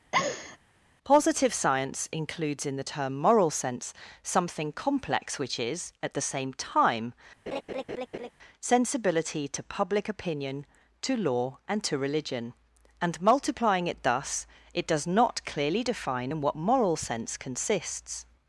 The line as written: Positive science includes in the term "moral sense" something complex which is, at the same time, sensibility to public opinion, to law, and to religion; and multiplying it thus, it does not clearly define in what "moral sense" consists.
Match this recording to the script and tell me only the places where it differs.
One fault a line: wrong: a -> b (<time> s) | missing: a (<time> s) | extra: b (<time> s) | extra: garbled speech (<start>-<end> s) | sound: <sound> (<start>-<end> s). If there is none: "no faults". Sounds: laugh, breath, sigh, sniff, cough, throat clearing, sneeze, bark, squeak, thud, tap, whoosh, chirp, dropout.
sound: laugh (0.1-0.6 s)
sound: laugh (7.5-8.3 s)